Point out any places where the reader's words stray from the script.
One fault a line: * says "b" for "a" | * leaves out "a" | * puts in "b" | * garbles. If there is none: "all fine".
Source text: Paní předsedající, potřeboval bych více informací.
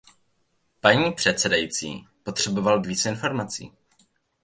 * leaves out "bych"